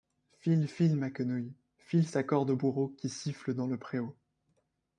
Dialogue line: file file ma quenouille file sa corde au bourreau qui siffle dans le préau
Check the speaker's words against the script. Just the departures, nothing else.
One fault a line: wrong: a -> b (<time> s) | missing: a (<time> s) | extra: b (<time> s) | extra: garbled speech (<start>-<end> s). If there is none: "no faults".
no faults